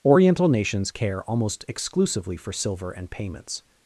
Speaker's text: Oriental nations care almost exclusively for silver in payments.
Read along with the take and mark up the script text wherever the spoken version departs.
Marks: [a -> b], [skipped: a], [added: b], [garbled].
Oriental nations care almost exclusively for silver [in -> and] payments.